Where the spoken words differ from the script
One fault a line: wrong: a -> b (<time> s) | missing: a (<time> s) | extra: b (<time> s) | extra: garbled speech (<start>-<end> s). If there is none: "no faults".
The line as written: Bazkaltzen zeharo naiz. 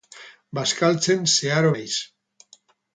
no faults